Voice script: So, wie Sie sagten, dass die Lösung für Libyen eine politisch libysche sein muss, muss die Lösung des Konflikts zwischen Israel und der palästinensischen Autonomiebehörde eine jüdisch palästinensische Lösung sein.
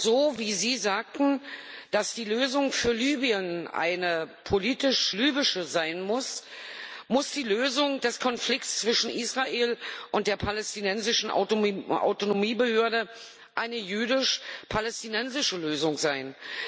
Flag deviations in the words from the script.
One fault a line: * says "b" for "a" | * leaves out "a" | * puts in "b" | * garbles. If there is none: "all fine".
all fine